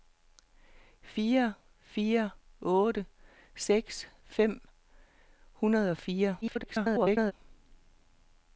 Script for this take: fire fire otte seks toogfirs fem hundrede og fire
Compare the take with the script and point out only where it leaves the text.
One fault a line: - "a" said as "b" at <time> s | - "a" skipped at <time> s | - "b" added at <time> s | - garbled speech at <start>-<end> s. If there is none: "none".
- "toogfirs" skipped at 4.1 s
- garbled speech at 6.4-7.3 s